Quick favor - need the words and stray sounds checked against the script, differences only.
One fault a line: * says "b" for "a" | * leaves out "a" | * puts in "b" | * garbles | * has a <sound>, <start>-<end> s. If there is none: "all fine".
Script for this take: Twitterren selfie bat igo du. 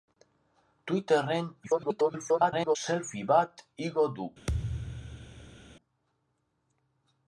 * garbles
* has a thud, 4.5-5.8 s